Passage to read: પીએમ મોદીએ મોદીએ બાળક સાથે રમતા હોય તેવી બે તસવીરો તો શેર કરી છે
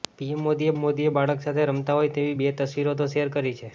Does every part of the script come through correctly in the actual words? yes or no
yes